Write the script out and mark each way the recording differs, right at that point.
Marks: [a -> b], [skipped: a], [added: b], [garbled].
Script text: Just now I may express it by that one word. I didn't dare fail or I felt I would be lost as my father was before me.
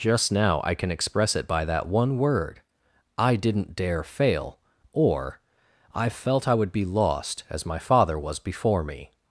Just now I [may -> can] express it by that one word. I didn't dare fail or I felt I would be lost as my father was before me.